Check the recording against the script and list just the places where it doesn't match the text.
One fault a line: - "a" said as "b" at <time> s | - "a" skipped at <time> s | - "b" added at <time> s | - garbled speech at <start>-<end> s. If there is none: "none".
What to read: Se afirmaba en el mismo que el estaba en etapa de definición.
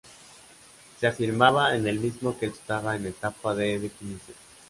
none